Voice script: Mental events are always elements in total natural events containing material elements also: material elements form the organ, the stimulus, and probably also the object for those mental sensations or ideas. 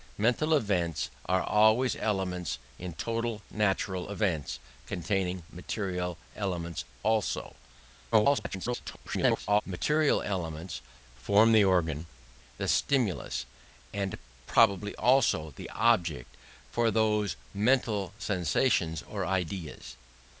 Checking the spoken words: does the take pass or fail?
fail